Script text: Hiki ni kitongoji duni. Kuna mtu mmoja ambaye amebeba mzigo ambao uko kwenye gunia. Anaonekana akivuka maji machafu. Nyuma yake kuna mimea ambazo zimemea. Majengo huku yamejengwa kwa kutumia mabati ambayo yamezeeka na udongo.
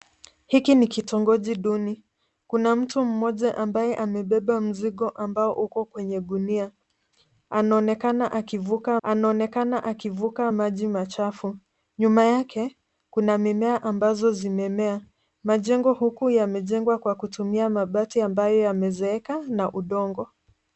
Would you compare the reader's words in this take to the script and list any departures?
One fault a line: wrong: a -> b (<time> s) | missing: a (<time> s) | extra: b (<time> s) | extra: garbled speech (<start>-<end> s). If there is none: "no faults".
extra: anaonekana akivuka (9.0 s)